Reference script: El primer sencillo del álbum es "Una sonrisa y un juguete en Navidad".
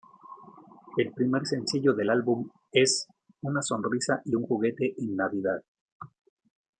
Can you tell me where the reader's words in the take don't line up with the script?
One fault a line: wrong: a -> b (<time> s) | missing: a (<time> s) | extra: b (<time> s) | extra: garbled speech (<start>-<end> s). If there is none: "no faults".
no faults